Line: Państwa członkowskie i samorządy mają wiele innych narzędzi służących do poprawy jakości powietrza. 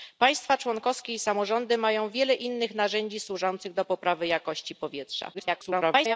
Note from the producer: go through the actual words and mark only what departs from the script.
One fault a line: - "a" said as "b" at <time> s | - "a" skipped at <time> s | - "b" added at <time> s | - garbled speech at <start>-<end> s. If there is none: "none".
- garbled speech at 5.3-6.2 s